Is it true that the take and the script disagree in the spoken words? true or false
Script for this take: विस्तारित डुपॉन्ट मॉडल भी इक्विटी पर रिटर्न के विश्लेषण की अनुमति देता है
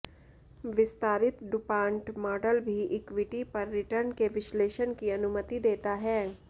false